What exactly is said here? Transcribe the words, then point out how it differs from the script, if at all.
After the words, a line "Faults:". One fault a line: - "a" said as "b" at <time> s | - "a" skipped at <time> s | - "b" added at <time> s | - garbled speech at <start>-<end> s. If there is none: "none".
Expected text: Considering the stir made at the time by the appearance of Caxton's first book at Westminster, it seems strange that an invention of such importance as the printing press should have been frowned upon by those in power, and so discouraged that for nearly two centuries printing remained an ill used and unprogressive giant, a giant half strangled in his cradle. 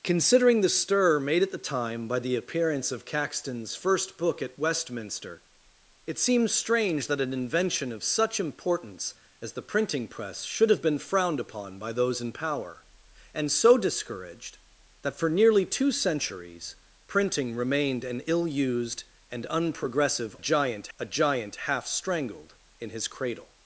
Considering the stir made at the time by the appearance of Caxton's first book at Westminster, it seems strange that an invention of such importance as the printing press should have been frowned upon by those in power, and so discouraged that for nearly two centuries printing remained an ill used and unprogressive giant, a giant half strangled in his cradle.
Faults:
none